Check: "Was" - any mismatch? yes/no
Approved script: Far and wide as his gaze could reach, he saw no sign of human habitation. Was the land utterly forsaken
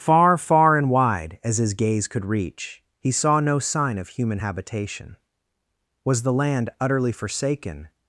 no